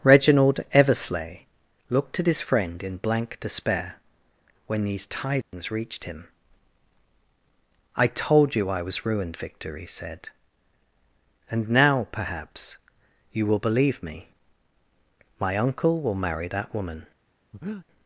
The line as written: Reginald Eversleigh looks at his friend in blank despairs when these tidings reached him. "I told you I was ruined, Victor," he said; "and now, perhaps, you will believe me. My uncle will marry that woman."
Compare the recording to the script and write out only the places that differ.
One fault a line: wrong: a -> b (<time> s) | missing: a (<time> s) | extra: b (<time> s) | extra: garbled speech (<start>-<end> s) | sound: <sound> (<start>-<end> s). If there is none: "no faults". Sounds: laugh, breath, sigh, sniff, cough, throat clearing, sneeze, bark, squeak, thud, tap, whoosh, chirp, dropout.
wrong: looks -> looked (1.9 s)
wrong: despairs -> despair (3.4 s)
sound: dropout (5.4-5.5 s)
sound: breath (17.5-17.9 s)